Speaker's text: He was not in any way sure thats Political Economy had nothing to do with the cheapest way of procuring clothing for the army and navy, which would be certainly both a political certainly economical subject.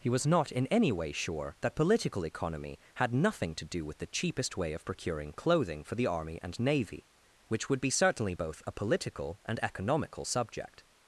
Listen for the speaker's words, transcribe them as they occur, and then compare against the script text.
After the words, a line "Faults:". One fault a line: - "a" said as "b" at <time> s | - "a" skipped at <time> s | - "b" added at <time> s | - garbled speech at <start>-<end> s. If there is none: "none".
He was not in any way sure that Political Economy had nothing to do with the cheapest way of procuring clothing for the army and navy, which would be certainly both a political and economical subject.
Faults:
- "thats" said as "that" at 1.6 s
- "certainly" said as "and" at 9.4 s